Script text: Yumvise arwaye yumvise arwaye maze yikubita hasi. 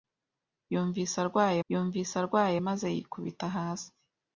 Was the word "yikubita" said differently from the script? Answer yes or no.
no